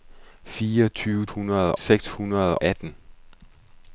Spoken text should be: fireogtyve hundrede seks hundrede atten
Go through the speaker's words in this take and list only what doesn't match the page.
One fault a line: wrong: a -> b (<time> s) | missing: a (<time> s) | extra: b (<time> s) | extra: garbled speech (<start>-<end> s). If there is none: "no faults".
no faults